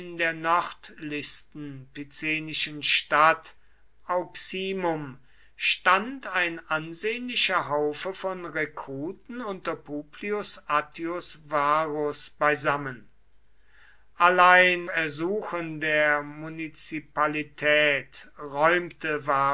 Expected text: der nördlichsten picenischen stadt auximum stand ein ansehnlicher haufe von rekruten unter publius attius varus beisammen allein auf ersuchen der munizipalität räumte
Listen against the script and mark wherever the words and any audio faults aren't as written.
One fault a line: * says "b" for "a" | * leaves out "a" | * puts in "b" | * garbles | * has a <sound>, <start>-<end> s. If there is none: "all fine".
* leaves out "auf"